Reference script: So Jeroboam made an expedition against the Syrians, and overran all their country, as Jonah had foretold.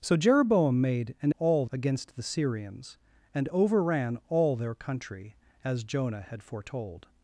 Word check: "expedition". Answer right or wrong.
wrong